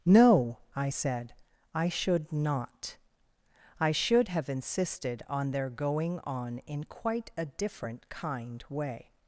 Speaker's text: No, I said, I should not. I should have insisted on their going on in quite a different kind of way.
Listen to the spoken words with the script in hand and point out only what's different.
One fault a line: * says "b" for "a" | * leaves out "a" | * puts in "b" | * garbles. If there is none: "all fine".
* leaves out "of"